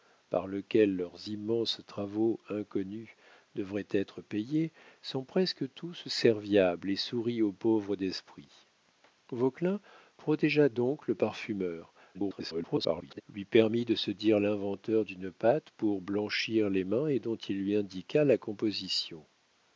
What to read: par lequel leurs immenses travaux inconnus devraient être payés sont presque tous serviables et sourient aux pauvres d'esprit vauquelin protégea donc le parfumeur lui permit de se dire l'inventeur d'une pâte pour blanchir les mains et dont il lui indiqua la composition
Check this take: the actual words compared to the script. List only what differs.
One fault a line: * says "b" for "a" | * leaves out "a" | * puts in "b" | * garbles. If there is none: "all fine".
* garbles